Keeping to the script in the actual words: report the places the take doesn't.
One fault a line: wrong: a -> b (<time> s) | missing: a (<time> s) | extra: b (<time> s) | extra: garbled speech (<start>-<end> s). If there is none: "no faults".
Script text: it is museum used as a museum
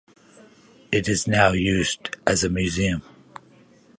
wrong: museum -> now (1.3 s)